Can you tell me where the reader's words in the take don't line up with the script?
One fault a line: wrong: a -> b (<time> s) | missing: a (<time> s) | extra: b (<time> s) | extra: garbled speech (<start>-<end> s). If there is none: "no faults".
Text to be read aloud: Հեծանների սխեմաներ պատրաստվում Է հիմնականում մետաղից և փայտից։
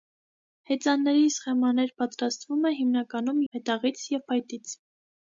no faults